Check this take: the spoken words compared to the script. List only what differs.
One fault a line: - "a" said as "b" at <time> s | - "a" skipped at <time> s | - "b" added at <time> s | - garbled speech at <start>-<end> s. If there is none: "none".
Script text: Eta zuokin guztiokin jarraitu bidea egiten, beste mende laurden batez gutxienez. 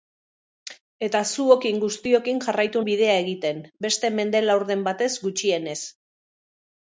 none